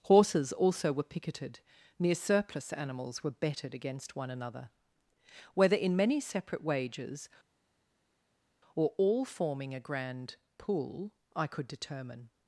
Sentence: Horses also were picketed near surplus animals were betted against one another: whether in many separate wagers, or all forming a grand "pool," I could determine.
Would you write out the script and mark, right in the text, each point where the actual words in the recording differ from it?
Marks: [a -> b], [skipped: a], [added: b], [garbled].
Horses also were picketed near surplus animals were betted against one another: whether in many separate wagers, or all forming a grand "pool," I could determine.